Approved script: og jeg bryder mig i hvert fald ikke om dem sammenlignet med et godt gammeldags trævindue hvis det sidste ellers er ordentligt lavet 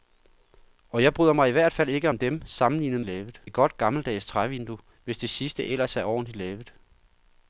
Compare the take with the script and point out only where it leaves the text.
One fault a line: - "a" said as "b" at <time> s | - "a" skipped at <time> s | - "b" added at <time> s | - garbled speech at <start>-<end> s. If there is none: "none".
- "med" said as "lavet" at 3.0 s